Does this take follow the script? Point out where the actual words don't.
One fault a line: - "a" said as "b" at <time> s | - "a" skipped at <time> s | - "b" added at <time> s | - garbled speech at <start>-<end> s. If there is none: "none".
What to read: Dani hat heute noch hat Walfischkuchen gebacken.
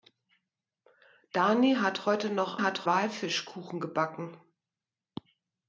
none